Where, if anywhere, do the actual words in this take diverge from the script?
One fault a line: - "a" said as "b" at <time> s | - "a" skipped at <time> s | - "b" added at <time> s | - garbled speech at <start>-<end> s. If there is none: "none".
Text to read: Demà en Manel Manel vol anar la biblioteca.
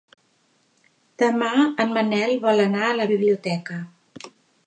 - "Manel" skipped at 2.3 s
- "a" added at 2.9 s